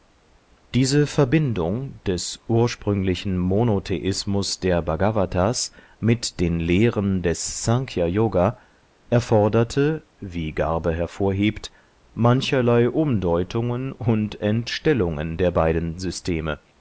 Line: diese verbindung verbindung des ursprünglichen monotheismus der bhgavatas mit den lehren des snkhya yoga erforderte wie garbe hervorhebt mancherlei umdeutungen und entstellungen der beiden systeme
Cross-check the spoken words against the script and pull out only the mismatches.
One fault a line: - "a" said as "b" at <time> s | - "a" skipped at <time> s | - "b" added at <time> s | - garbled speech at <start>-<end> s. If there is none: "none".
- "verbindung" skipped at 2.0 s